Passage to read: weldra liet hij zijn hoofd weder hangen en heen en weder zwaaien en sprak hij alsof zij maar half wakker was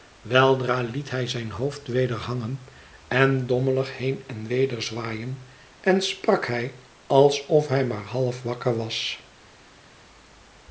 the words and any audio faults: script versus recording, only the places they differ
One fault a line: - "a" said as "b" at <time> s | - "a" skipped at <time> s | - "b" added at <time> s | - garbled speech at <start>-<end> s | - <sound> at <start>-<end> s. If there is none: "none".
- "dommelig" added at 3.5 s
- "zij" said as "hij" at 7.7 s